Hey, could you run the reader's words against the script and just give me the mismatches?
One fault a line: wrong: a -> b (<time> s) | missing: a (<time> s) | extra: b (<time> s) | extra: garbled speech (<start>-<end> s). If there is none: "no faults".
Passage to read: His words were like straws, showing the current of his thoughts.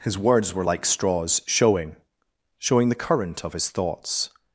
extra: showing (2.6 s)